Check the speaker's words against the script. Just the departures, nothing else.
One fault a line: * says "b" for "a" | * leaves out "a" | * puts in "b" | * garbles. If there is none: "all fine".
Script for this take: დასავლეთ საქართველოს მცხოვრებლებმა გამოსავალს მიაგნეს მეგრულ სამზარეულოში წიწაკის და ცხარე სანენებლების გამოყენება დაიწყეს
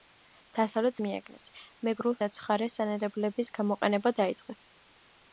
* leaves out "საქართველოს მცხოვრებლებმა გამოსავალს"
* leaves out "სამზარეულოში წიწაკის"